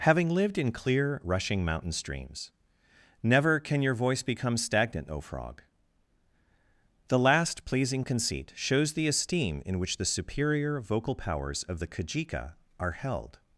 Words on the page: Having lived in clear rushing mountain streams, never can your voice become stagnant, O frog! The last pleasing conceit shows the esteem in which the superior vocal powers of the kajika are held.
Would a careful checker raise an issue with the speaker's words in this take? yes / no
no